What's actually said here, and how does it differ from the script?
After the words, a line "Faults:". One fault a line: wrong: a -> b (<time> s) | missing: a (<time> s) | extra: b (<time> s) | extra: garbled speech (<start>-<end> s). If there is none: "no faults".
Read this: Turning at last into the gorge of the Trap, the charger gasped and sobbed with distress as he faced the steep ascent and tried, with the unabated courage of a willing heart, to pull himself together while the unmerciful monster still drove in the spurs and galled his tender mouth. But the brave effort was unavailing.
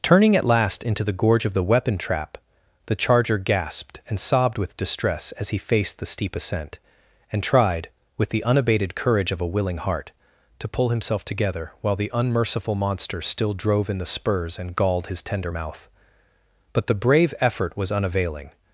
Turning at last into the gorge of the weapon Trap, the charger gasped and sobbed with distress as he faced the steep ascent and tried, with the unabated courage of a willing heart, to pull himself together while the unmerciful monster still drove in the spurs and galled his tender mouth. But the brave effort was unavailing.
Faults:
extra: weapon (1.6 s)